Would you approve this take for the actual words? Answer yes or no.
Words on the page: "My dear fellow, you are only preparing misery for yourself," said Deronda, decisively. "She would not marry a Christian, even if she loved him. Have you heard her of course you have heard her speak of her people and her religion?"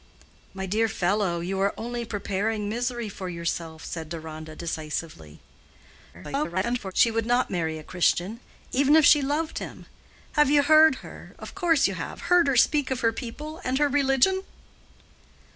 no